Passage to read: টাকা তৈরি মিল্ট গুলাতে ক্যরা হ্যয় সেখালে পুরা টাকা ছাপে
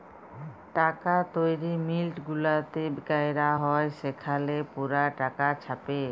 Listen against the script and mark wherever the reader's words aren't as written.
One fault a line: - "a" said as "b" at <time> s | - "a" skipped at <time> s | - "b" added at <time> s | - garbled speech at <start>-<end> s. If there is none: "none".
none